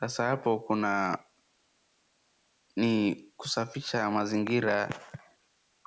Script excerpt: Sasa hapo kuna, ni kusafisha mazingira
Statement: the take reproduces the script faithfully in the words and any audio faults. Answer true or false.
true